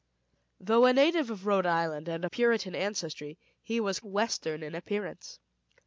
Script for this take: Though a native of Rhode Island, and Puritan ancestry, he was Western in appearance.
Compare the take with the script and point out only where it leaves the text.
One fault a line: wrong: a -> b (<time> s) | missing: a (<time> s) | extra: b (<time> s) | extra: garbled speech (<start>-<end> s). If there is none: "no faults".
no faults